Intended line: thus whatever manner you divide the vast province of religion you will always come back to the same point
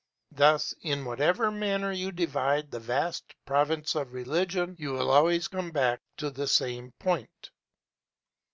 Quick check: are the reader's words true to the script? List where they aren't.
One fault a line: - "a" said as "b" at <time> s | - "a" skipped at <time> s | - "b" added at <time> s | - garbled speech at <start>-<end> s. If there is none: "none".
- "in" added at 0.8 s